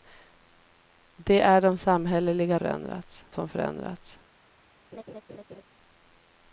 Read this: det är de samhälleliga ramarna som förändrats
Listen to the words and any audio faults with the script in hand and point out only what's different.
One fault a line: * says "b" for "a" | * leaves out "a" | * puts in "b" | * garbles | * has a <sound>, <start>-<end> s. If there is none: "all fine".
* says "förändrats" for "ramarna"
* has a laugh, 4.9-5.6 s